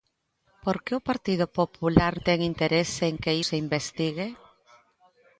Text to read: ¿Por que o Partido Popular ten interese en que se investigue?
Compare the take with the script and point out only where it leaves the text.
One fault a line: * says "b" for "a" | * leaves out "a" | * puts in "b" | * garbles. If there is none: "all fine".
all fine